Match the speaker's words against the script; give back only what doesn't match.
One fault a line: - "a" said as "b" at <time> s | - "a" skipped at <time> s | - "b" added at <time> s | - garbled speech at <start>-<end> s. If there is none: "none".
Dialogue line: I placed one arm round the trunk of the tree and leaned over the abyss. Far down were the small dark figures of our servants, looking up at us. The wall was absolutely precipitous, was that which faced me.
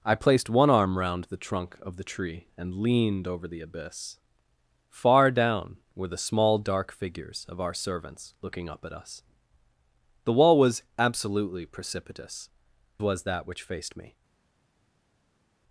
none